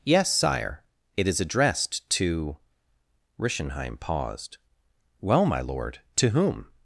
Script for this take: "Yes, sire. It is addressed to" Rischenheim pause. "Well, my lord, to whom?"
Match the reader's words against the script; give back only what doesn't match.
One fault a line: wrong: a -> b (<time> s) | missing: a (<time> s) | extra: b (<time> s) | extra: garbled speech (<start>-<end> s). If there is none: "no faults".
wrong: pause -> paused (4.0 s)